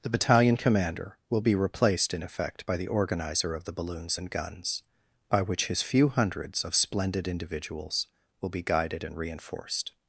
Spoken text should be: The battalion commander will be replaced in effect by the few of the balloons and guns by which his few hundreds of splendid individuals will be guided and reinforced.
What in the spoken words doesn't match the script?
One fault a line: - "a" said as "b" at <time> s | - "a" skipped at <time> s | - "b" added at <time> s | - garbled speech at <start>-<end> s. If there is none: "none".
- "few" said as "organizer" at 2.9 s